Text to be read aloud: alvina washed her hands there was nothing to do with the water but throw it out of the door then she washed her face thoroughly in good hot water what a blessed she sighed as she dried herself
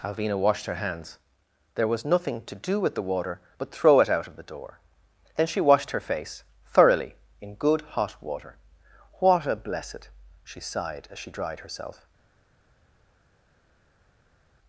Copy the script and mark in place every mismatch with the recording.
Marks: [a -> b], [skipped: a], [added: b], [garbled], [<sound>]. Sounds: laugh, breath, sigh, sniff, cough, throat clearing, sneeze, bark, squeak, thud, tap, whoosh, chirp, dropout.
alvina washed her hands there was nothing to do with the water but throw it out of the door then she washed her face thoroughly in good hot water what a blessed she sighed as she dried herself